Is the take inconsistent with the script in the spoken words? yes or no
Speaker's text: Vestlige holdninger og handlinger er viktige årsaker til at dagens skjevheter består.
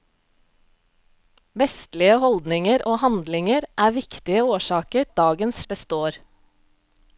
yes